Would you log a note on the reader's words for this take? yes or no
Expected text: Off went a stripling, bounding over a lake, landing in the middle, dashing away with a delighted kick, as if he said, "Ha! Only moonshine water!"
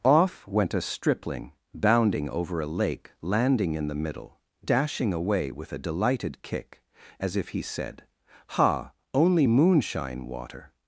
no